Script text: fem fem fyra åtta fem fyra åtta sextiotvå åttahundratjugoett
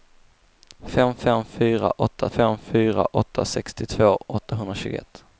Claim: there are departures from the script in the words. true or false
false